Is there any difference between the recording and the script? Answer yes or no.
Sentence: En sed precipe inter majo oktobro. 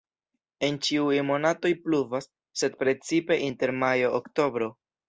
yes